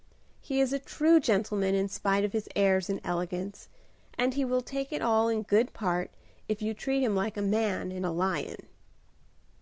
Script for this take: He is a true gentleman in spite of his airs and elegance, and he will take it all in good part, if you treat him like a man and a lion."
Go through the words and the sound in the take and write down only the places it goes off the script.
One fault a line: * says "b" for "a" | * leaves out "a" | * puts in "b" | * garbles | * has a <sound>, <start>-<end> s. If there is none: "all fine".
all fine